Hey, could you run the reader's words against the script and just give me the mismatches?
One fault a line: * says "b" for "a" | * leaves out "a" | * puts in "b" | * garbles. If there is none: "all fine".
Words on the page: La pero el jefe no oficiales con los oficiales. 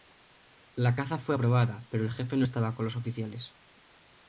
* puts in "caza fue aprobada"
* says "estaba" for "oficiales"